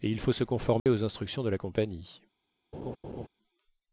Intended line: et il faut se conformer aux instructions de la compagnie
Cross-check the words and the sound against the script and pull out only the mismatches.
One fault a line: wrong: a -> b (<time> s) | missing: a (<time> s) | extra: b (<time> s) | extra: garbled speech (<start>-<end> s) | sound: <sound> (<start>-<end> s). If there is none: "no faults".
sound: dropout (0.8-0.9 s)
sound: laugh (2.7-3.3 s)